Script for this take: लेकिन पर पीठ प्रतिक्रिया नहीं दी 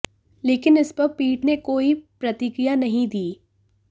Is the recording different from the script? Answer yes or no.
yes